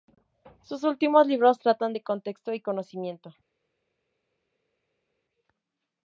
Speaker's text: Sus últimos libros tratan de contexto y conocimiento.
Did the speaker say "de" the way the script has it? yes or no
yes